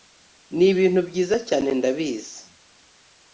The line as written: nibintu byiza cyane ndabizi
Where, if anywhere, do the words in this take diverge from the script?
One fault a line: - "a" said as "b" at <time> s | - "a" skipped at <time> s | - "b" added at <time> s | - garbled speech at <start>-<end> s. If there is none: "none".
none